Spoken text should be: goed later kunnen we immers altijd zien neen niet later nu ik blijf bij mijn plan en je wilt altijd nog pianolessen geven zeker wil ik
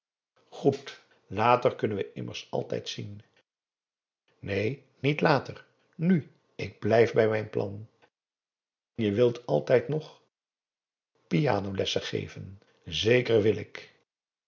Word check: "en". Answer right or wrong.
wrong